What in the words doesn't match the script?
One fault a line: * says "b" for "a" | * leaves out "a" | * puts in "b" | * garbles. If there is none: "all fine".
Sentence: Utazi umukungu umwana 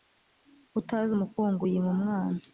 * puts in "yima"